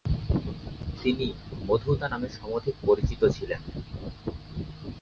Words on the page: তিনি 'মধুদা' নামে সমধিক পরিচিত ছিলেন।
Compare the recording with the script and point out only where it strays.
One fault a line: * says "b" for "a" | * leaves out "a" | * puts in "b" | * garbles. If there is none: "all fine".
all fine